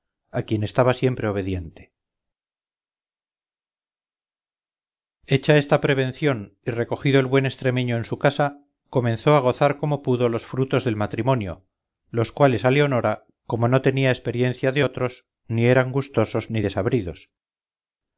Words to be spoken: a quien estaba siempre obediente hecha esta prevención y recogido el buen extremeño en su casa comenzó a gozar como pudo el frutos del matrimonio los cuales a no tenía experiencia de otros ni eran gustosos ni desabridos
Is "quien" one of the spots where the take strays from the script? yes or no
no